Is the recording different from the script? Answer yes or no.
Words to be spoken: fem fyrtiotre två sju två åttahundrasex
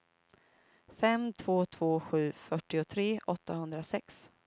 yes